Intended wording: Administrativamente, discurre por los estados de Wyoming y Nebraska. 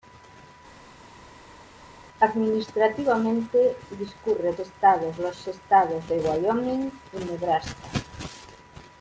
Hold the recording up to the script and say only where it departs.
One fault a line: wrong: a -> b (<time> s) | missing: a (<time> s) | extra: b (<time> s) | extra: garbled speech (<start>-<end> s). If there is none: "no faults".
wrong: por -> estados (4.6 s)